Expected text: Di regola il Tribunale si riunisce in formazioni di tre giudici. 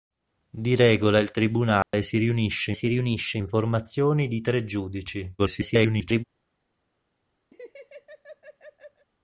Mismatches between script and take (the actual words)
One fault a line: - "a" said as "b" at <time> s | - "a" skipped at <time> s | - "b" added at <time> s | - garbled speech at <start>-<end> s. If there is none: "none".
- "si riunisce" added at 2.7 s
- garbled speech at 5.4-6.2 s